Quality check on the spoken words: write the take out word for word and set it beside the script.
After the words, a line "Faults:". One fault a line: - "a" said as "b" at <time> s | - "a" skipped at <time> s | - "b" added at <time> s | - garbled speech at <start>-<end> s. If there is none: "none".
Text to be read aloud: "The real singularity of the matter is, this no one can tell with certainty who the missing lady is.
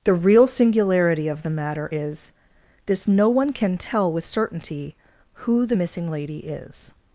"The real singularity of the matter is, this no one can tell with certainty who the missing lady is.
Faults:
none